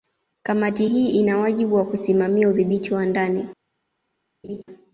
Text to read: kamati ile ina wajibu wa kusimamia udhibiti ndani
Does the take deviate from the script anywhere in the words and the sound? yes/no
yes